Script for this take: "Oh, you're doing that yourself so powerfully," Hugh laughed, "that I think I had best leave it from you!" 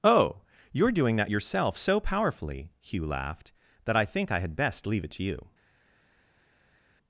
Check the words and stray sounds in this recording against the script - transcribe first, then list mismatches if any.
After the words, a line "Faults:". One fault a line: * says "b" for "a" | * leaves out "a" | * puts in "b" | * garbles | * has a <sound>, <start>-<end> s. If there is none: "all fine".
"Oh, you're doing that yourself so powerfully," Hugh laughed, "that I think I had best leave it to you!"
Faults:
* says "to" for "from"